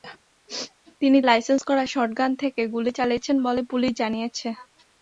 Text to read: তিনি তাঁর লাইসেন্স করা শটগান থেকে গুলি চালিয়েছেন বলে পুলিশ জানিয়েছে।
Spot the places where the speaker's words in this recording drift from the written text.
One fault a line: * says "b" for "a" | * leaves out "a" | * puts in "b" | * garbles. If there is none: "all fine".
* leaves out "তাঁর"